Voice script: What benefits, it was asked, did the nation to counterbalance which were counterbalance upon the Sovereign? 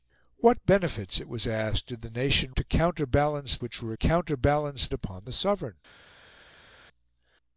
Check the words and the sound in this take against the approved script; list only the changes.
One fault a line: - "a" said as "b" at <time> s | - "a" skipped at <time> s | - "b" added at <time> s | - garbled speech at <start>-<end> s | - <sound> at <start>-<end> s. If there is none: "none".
none